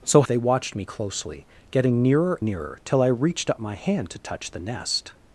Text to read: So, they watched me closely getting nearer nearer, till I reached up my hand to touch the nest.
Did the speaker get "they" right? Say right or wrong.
right